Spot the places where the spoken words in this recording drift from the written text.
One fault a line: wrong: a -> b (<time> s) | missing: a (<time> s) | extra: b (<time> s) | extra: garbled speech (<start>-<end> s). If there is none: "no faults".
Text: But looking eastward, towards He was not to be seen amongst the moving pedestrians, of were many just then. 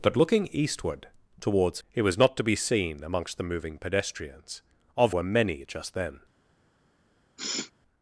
no faults